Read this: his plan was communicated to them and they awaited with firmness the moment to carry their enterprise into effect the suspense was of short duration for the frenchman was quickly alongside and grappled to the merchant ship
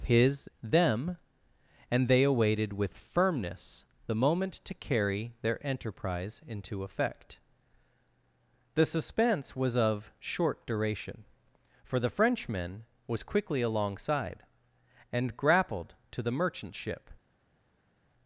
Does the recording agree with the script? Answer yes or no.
no